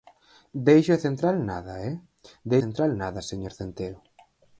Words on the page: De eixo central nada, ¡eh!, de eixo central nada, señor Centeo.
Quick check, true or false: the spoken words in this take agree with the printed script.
false